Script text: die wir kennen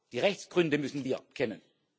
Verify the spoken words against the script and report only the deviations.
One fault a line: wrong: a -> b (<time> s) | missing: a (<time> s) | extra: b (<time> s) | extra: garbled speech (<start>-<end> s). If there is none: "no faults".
extra: rechtsgründe müssen (0.2 s)